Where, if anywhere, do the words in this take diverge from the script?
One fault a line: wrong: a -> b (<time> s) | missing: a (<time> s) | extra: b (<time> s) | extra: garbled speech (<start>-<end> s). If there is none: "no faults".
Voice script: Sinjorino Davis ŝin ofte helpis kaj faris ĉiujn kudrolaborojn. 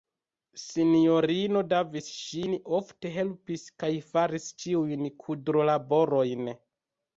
no faults